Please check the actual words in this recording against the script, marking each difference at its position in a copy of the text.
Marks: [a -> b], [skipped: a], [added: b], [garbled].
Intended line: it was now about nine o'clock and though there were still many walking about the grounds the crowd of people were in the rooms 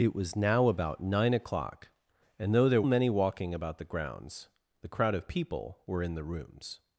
it was now about nine o'clock and though there [skipped: were still] many walking about the grounds the crowd of people were in the rooms